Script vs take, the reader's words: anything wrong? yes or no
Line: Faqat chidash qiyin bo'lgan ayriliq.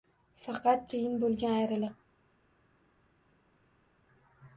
yes